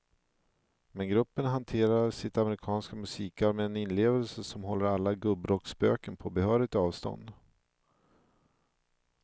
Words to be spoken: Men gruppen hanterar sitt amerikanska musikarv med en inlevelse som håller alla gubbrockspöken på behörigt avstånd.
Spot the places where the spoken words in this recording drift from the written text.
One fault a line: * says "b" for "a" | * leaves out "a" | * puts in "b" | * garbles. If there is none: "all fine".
all fine